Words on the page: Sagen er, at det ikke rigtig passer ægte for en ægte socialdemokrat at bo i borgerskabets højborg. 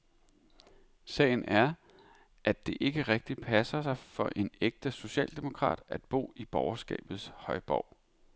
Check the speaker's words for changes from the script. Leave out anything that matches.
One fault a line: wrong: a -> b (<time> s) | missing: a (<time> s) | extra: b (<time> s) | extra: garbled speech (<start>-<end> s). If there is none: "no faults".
wrong: ægte -> sig (3.8 s)